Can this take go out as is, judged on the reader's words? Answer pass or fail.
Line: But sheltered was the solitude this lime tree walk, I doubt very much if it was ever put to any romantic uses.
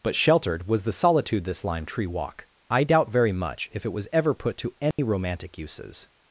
pass